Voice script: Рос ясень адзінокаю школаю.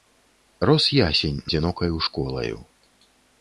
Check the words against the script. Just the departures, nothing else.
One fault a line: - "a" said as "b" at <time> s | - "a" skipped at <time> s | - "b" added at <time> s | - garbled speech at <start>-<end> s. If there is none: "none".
none